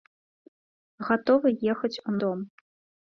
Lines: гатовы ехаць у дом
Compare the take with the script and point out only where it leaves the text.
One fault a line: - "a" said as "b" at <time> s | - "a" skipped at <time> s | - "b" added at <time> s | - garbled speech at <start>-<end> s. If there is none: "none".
none